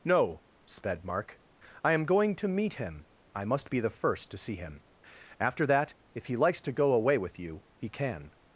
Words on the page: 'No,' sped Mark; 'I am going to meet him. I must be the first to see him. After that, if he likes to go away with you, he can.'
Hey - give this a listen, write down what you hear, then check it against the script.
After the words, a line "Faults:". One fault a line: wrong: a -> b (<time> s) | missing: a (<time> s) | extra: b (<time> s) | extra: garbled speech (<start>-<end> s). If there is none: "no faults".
'No,' sped Mark; 'I am going to meet him. I must be the first to see him. After that, if he likes to go away with you, he can.'
Faults:
no faults